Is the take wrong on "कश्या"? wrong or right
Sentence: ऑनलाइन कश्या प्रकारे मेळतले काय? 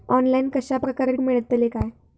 right